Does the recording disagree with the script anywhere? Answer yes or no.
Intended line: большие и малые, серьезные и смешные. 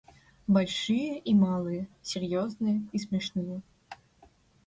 no